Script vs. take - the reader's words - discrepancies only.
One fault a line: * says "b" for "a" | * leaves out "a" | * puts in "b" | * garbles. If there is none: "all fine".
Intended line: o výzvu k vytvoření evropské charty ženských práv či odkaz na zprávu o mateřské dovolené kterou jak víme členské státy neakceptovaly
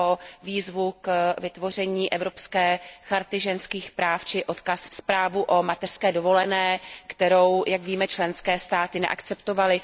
* leaves out "na"